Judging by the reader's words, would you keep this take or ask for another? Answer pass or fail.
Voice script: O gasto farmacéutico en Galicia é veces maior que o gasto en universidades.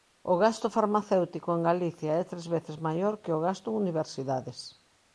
fail